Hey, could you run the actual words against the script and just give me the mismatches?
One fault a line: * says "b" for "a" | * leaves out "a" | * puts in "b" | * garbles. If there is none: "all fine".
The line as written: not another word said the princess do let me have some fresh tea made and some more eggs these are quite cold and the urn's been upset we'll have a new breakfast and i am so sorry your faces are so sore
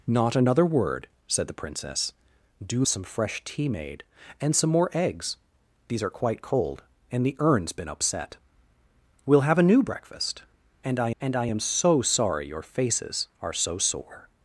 * leaves out "let me have"
* puts in "and i"